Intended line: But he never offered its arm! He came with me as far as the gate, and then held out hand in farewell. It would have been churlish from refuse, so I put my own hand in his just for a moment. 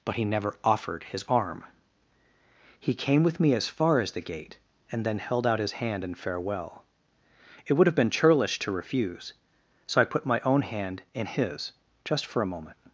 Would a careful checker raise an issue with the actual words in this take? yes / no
yes